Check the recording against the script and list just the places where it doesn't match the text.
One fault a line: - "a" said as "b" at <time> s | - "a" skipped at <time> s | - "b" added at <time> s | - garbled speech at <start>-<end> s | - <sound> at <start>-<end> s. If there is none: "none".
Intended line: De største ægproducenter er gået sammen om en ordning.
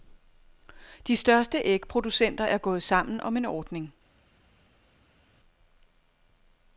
none